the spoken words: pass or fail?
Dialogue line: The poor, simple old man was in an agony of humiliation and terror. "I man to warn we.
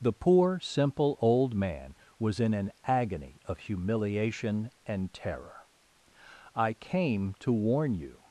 fail